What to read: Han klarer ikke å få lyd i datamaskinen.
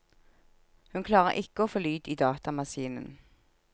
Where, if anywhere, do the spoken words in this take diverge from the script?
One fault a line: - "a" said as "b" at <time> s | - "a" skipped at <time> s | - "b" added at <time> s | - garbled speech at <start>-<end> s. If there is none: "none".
- "Han" said as "Hun" at 0.9 s